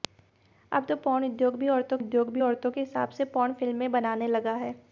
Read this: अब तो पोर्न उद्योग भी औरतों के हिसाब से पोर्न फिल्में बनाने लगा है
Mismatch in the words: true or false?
true